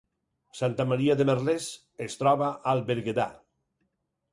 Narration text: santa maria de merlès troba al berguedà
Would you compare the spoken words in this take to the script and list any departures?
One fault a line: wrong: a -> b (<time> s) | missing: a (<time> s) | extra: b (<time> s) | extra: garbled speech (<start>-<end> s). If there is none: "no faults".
extra: es (2.1 s)